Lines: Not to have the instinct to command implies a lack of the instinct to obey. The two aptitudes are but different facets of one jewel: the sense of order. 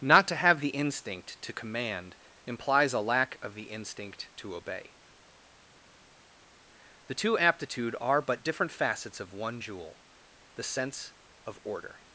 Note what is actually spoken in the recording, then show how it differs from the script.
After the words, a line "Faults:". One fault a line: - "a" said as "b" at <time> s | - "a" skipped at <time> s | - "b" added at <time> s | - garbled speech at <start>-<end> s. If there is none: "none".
Not to have the instinct to command implies a lack of the instinct to obey. The two aptitude are but different facets of one jewel: the sense of order.
Faults:
- "aptitudes" said as "aptitude" at 7.4 s